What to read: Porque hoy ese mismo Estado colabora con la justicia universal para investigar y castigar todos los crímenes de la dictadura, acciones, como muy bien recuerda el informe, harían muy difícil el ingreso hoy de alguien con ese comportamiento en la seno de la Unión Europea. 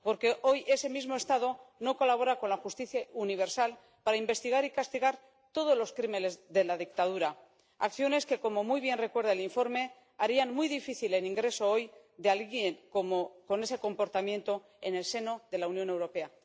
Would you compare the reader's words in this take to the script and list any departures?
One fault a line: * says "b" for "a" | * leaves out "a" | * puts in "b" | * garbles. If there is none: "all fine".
* puts in "no"
* puts in "que"
* says "el" for "la"